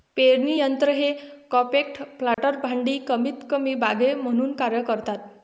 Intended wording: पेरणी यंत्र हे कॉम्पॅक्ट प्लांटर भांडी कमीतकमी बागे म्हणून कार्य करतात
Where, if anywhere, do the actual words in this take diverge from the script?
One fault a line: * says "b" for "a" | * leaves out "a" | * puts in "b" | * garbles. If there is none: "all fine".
all fine